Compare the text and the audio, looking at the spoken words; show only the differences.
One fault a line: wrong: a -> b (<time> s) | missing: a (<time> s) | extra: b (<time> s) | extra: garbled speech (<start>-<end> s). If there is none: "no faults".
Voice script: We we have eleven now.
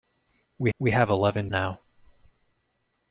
no faults